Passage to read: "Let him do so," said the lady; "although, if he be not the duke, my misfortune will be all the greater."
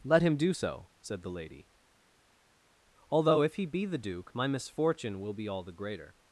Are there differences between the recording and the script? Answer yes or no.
yes